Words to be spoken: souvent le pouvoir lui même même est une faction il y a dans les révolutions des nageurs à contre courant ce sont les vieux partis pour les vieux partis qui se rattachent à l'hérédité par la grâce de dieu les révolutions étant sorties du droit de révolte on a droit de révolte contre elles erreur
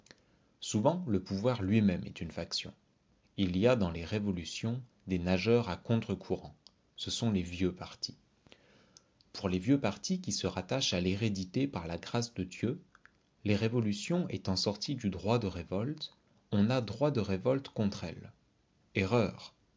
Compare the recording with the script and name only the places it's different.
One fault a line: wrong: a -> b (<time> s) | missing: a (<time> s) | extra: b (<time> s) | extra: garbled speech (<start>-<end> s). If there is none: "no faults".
missing: même (2.0 s)